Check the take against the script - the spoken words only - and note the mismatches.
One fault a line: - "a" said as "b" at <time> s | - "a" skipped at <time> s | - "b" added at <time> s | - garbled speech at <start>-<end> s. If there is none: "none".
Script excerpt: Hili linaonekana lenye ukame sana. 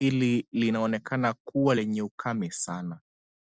- "kuwa" added at 1.3 s